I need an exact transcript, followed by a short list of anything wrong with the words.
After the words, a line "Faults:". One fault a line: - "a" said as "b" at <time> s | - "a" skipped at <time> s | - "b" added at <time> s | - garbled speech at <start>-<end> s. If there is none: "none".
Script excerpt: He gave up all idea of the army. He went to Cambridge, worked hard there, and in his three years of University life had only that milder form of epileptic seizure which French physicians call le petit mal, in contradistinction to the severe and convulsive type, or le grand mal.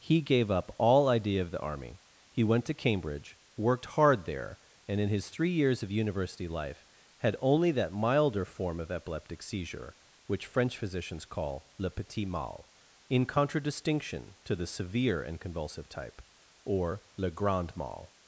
He gave up all idea of the army. He went to Cambridge, worked hard there, and in his three years of University life had only that milder form of epileptic seizure which French physicians call le petit mal, in contradistinction to the severe and convulsive type, or le grand mal.
Faults:
none